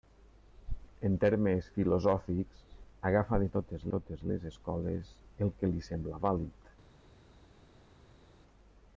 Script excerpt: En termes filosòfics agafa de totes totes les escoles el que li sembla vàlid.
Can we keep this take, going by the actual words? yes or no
yes